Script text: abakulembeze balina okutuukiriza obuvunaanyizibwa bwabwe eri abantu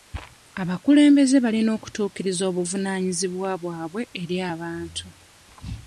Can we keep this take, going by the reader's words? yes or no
yes